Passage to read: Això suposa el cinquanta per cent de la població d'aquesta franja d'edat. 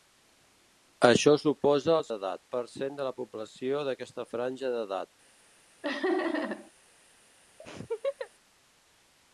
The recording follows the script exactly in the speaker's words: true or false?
false